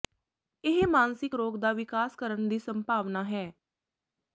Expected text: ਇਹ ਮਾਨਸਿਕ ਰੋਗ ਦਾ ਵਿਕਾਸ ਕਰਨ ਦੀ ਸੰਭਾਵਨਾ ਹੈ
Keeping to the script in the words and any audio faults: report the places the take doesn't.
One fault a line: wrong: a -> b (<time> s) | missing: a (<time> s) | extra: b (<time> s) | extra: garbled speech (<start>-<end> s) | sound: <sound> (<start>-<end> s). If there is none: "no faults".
no faults